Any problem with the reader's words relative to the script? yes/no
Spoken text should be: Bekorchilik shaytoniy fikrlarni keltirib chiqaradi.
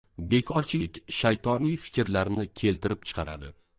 no